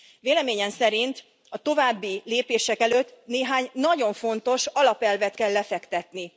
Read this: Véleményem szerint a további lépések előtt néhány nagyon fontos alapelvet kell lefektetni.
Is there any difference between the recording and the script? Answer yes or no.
no